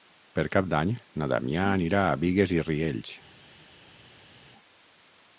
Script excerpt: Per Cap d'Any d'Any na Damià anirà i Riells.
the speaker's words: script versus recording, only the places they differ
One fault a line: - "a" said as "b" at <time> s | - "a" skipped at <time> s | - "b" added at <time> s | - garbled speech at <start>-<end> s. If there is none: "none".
- "d'Any" skipped at 0.9 s
- "a Bigues" added at 2.1 s